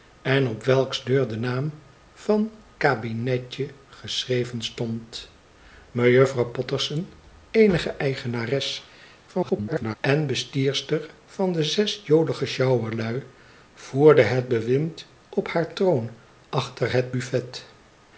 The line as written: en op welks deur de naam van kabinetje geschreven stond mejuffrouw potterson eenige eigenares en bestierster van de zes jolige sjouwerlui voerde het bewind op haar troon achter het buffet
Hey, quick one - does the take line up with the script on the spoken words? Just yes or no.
no